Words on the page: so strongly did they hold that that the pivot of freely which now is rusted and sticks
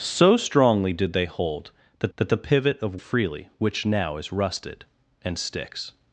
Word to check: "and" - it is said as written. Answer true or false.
true